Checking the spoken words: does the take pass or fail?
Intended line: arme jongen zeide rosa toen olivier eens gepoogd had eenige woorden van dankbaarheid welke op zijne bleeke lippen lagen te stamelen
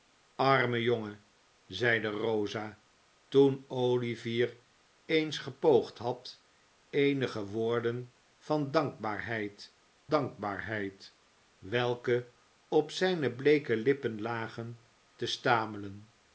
fail